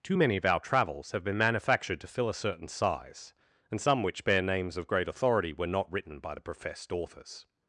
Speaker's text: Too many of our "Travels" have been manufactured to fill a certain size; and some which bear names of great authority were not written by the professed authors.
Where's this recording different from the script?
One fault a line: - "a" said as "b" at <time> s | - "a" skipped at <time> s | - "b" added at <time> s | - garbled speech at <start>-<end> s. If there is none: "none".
none